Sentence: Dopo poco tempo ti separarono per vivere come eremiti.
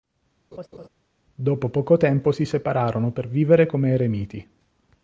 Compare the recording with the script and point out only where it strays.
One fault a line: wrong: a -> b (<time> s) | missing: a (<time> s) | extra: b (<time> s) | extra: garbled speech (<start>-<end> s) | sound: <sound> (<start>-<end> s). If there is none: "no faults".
sound: laugh (0.5-0.9 s)
wrong: ti -> si (2.3 s)